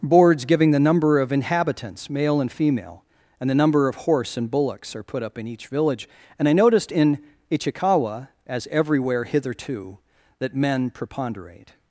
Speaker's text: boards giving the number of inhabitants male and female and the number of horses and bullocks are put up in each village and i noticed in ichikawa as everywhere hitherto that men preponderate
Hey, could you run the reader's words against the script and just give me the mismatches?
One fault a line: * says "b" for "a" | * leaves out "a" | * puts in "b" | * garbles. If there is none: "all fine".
* says "horse" for "horses"